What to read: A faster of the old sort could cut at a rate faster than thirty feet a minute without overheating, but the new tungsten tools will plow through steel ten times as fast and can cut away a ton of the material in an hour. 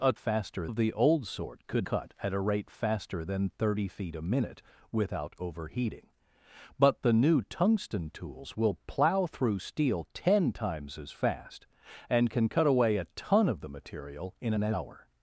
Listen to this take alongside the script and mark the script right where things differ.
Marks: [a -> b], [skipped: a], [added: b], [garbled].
A faster of the old sort could cut at a rate faster than thirty feet a minute without overheating, but the new tungsten tools will plow through steel ten times as fast and can cut away a ton of the material in an hour.